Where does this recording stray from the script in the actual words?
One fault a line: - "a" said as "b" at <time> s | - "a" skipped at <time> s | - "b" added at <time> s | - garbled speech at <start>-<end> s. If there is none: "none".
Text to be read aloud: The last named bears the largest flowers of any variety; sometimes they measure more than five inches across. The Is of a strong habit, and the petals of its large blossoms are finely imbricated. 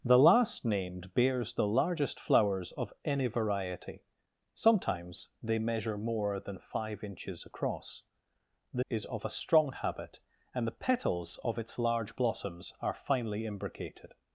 none